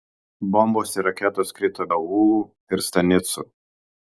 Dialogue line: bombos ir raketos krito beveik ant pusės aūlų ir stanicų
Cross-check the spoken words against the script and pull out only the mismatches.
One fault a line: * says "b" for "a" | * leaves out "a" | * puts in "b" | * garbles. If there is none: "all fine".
* leaves out "beveik ant pusės"